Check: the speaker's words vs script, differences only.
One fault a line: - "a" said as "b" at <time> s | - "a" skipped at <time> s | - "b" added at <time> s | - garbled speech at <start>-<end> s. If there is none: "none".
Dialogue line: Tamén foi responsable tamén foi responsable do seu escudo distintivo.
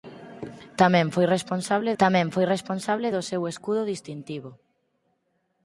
none